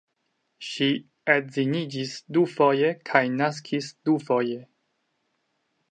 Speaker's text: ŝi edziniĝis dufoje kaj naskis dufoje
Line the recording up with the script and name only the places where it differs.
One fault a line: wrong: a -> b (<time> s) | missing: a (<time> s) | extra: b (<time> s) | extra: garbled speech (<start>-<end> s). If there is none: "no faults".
no faults